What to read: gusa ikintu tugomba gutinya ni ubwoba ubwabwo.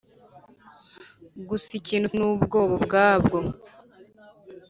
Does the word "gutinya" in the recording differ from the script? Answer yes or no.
yes